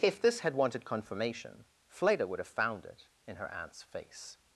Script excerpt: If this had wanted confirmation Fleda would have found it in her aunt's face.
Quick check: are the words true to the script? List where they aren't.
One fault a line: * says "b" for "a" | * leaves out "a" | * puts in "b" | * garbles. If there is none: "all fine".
all fine